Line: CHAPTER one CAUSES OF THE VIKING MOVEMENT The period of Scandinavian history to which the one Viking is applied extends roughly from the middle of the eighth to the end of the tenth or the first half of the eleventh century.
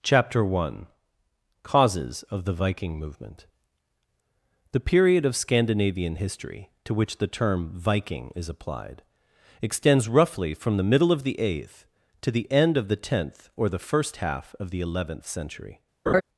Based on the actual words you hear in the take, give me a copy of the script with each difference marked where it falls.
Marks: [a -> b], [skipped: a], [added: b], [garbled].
CHAPTER one CAUSES OF THE VIKING MOVEMENT The period of Scandinavian history to which the [one -> term] Viking is applied extends roughly from the middle of the eighth to the end of the tenth or the first half of the eleventh century.